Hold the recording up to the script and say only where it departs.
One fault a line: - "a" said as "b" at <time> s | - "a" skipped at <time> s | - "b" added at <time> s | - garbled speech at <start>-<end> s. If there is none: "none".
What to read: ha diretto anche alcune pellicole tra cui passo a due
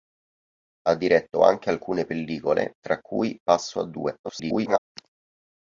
- garbled speech at 4.2-4.8 s